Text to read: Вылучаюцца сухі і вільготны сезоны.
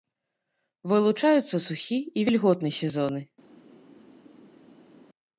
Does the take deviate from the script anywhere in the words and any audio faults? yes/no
no